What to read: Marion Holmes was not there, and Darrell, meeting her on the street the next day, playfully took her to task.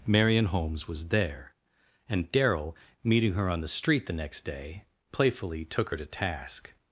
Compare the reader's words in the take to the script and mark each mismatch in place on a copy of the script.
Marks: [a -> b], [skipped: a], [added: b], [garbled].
Marion Holmes was [skipped: not] there, and Darrell, meeting her on the street the next day, playfully took her to task.